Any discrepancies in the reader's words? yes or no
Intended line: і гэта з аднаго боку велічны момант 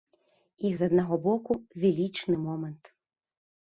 yes